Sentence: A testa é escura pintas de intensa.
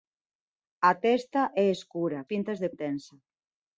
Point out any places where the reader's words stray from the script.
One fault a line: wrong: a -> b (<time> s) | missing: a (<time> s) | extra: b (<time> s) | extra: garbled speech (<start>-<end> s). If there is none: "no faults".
no faults